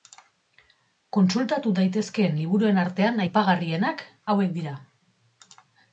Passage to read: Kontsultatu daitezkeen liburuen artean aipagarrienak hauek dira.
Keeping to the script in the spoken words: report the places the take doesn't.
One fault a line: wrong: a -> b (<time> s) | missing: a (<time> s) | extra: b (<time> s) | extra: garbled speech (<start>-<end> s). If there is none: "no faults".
no faults